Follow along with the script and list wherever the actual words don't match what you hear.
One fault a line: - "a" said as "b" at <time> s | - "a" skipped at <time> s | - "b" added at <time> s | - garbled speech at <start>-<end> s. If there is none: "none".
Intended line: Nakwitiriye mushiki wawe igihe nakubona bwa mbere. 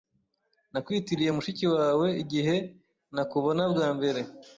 none